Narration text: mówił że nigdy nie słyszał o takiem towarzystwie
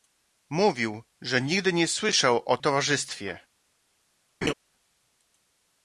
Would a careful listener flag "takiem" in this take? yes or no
yes